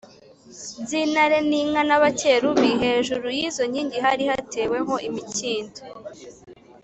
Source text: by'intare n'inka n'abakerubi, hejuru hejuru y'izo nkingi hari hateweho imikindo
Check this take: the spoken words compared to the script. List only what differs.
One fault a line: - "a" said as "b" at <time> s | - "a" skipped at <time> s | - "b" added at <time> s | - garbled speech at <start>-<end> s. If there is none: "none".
- "hejuru" skipped at 3.3 s